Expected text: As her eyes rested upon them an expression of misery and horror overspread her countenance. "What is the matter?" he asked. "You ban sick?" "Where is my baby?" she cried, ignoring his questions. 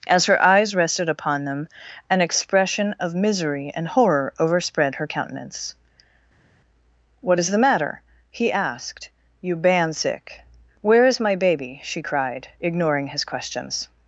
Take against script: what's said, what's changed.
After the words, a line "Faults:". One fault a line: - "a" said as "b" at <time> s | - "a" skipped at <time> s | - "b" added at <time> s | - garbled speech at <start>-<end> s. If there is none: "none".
As her eyes rested upon them an expression of misery and horror overspread her countenance. "What is the matter?" he asked. "You ban sick?" "Where is my baby?" she cried, ignoring his questions.
Faults:
none